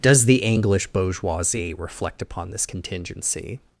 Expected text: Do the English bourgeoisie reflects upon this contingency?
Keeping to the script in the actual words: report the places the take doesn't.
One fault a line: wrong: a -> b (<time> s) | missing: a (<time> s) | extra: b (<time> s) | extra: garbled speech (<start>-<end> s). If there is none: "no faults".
wrong: Do -> Does (0.0 s)
wrong: reflects -> reflect (1.8 s)